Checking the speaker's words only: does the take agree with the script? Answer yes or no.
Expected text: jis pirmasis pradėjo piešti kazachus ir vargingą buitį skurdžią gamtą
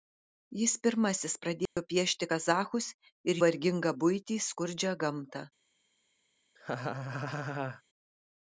yes